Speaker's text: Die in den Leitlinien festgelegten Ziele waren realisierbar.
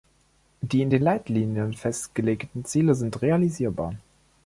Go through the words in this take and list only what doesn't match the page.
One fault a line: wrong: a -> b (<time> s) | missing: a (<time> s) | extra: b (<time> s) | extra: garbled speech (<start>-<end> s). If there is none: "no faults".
wrong: waren -> sind (2.9 s)